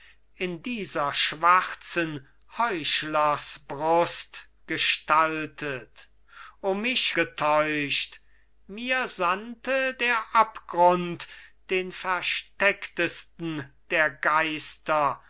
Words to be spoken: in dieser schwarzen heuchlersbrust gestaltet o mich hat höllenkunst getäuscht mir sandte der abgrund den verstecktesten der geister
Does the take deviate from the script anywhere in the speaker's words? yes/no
yes